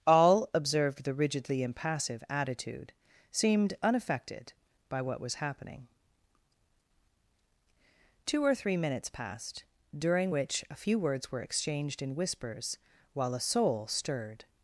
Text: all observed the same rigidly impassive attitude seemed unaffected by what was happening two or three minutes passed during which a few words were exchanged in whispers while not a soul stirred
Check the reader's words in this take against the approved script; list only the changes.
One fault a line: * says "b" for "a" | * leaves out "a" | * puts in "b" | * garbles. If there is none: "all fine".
* leaves out "same"
* leaves out "not"